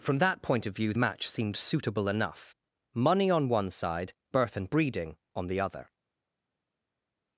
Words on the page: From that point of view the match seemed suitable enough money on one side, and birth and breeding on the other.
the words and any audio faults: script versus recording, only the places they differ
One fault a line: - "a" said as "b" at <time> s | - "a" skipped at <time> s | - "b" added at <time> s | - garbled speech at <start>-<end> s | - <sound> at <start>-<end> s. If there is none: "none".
- "the" skipped at 0.9 s
- "and" skipped at 4.1 s